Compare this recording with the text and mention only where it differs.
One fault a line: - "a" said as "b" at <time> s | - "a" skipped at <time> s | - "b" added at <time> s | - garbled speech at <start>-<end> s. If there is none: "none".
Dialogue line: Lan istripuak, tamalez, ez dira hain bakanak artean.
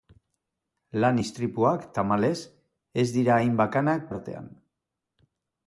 none